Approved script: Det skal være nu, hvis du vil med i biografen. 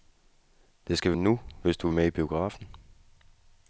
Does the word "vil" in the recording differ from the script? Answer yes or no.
yes